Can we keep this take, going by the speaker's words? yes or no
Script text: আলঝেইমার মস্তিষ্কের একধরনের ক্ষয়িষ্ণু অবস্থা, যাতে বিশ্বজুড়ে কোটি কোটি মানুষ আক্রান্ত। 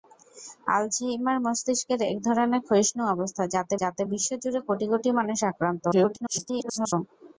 no